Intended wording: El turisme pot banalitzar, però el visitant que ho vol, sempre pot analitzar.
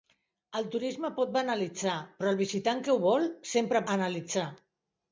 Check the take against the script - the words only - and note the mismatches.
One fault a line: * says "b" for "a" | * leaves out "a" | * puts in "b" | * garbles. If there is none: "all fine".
* leaves out "pot"